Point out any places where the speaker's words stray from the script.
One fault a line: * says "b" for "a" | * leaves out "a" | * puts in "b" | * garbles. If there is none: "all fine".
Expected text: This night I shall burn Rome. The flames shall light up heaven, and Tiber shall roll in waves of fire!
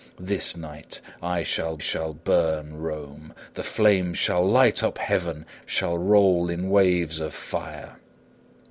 * puts in "shall"
* leaves out "and Tiber"